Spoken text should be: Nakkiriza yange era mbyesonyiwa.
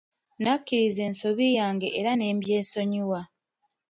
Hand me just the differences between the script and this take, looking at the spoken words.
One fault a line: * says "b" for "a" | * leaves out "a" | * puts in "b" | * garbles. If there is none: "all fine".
* puts in "ensobi"
* puts in "ne"